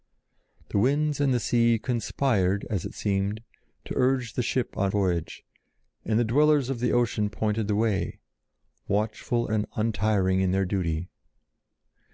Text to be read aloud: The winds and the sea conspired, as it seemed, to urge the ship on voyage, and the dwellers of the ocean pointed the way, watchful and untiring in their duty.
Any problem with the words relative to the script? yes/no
no